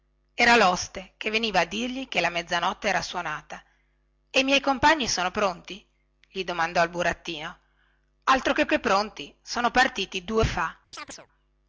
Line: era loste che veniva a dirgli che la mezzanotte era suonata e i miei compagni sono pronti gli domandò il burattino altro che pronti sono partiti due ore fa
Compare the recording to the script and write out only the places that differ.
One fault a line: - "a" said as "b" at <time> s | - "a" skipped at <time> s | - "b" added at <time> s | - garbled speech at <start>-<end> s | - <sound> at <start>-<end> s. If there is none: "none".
- "che" added at 8.7 s
- "ore" skipped at 10.5 s
- chirp at 10.9-11.3 s